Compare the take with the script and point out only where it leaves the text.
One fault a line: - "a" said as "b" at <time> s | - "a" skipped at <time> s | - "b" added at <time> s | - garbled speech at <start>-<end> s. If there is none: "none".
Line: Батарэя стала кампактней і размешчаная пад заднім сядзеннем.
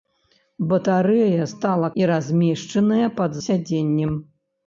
- "кампактней" skipped at 1.9 s
- "заднім" skipped at 3.3 s